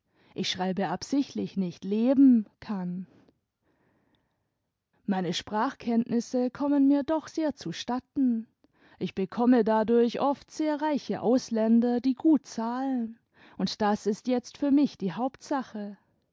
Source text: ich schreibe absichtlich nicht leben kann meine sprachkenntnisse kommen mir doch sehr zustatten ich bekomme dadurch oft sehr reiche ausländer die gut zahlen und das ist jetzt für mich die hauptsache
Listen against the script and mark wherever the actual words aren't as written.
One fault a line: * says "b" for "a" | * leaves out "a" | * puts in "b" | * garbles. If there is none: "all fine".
all fine